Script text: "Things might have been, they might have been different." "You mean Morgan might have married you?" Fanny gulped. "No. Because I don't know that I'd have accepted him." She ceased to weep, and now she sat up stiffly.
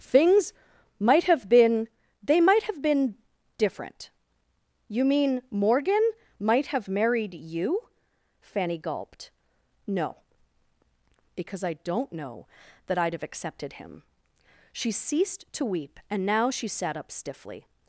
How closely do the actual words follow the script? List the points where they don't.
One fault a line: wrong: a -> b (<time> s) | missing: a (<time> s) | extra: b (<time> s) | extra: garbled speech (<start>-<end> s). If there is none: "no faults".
no faults